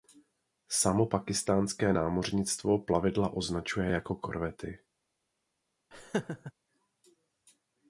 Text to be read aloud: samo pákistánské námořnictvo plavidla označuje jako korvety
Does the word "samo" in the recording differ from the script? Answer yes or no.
no